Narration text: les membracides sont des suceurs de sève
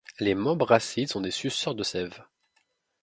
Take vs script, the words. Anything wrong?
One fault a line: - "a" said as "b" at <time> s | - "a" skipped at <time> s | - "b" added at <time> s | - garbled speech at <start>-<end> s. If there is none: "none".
none